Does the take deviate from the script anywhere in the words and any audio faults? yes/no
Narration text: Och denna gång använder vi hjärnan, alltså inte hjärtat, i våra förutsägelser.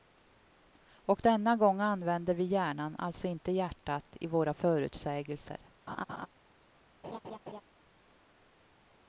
yes